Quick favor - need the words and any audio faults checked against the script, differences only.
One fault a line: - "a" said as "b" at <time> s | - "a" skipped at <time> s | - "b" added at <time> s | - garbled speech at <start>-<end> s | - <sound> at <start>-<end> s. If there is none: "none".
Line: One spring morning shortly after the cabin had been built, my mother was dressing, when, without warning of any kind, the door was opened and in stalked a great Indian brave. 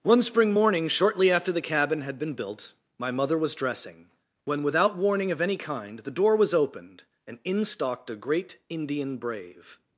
none